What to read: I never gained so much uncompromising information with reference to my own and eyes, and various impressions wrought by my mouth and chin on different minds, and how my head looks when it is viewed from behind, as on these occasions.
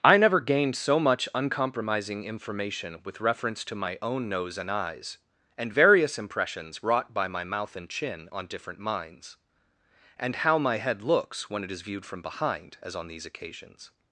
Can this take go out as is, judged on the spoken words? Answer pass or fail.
fail